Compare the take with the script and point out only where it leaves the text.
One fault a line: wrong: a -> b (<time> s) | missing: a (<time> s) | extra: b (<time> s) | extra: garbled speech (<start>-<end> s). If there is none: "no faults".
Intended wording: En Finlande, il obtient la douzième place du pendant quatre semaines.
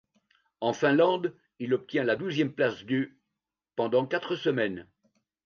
no faults